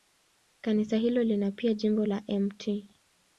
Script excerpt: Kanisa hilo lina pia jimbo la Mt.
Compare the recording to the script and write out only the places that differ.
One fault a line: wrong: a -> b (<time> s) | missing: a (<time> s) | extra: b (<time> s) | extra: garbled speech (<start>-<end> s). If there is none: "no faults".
no faults